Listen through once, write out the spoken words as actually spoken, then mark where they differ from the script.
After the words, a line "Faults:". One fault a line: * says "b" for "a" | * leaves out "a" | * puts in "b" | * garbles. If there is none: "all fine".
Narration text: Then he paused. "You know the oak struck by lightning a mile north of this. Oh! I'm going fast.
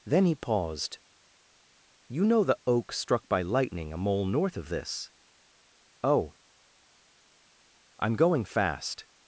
Then he paused. "You know the oak struck by lightning a mole north of this. Oh! I'm going fast.
Faults:
* says "mole" for "mile"